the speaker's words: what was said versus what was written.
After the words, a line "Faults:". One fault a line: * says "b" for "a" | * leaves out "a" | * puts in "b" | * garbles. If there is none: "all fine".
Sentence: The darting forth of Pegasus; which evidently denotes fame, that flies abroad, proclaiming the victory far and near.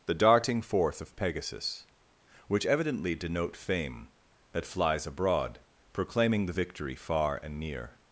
The darting forth of Pegasus; which evidently denote fame, that flies abroad, proclaiming the victory far and near.
Faults:
* says "denote" for "denotes"